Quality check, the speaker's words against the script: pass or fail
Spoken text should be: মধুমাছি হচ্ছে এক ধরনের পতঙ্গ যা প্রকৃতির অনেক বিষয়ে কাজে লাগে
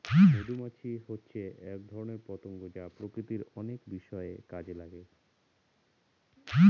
pass